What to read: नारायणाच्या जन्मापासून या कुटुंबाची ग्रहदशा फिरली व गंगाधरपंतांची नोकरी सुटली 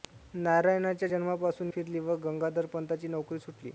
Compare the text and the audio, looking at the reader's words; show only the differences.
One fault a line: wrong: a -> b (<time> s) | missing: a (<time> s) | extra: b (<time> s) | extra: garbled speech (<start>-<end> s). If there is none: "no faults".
missing: या कुटुंबाची ग्रहदशा (1.7 s)